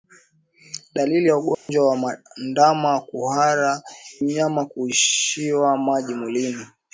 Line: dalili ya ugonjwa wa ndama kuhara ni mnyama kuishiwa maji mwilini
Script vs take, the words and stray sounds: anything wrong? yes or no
yes